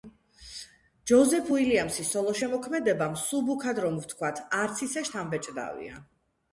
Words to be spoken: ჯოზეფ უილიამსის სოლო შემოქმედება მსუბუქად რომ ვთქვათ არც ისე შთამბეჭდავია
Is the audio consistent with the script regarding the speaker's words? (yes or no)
yes